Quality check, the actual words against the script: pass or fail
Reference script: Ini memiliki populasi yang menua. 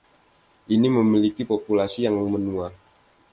pass